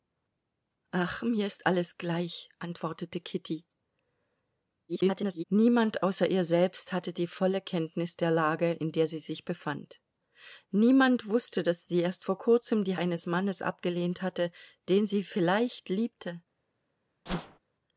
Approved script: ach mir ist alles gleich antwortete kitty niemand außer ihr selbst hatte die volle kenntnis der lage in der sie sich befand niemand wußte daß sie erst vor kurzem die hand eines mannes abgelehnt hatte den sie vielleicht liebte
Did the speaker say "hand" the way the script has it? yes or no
no